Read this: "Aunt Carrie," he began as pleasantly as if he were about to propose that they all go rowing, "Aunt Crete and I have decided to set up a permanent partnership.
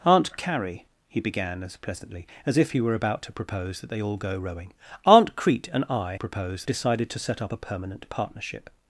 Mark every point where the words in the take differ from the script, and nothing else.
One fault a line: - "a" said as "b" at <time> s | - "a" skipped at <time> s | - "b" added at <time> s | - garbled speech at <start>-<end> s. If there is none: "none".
- "have" said as "propose" at 6.1 s